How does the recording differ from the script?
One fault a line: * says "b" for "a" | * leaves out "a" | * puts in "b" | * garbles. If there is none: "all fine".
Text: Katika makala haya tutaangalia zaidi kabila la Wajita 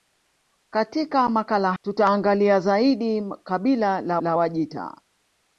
* leaves out "haya"
* puts in "la"